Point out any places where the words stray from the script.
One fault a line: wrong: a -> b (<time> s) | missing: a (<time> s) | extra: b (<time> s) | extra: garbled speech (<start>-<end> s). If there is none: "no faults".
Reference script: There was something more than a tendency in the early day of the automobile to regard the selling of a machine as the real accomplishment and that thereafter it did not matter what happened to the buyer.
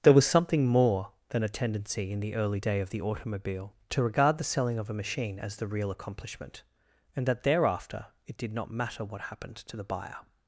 no faults